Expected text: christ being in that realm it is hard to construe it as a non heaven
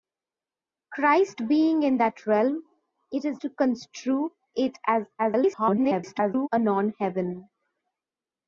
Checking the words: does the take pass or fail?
fail